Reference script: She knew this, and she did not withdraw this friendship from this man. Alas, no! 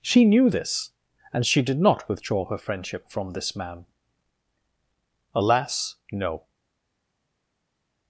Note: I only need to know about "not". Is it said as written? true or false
true